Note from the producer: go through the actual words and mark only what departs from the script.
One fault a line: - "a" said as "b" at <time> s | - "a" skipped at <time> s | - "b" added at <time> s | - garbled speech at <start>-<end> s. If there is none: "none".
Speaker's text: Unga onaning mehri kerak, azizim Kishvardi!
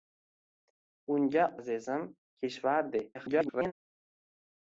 - "onaning mehri kerak" skipped at 1.4 s
- garbled speech at 3.1-3.7 s